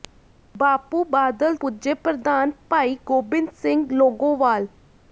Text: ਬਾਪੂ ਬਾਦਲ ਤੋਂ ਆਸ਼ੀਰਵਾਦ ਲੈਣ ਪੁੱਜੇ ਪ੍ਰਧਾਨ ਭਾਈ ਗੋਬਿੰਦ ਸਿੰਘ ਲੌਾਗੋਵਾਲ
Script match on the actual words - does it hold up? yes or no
no